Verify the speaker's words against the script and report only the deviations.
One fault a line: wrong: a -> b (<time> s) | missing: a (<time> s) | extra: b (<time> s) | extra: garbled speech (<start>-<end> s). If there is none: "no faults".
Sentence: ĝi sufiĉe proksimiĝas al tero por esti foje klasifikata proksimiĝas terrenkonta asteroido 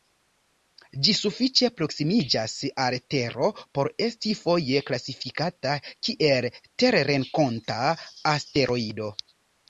wrong: proksimiĝas -> kiel (6.1 s)